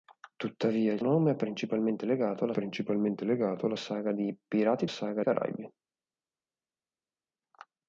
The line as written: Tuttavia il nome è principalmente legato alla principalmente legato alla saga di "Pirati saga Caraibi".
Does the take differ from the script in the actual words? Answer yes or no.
no